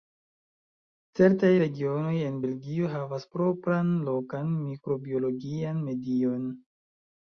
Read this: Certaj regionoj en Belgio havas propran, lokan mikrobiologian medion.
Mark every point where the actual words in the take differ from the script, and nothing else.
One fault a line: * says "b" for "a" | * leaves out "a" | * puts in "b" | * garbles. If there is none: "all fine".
all fine